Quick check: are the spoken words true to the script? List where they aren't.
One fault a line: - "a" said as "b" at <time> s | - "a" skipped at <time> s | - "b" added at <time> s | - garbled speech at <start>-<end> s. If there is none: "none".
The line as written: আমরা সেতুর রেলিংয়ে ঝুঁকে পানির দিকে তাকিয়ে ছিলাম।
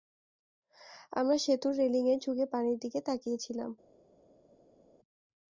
none